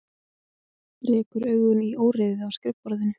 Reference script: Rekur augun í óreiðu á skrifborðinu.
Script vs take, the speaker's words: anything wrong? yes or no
no